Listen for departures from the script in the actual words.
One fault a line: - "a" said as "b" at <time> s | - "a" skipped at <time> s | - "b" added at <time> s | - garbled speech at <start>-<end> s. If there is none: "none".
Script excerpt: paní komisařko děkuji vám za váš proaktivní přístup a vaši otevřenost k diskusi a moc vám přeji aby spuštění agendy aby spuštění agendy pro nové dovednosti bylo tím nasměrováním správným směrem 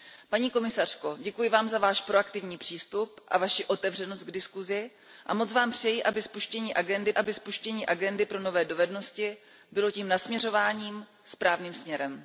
none